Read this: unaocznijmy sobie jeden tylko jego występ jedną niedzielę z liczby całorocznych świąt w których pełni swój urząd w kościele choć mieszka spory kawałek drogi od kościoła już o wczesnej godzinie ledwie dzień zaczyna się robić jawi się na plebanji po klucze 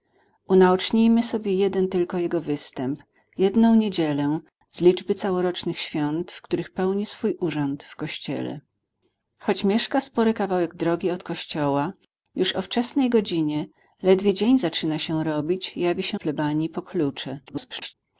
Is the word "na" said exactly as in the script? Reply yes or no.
no